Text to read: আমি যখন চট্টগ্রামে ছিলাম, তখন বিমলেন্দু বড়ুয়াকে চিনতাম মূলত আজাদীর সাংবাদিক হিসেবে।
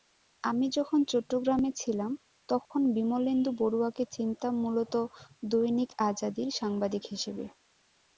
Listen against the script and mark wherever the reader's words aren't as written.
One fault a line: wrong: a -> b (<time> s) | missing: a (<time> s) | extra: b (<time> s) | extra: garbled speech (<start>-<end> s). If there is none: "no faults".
extra: দৈনিক (5.5 s)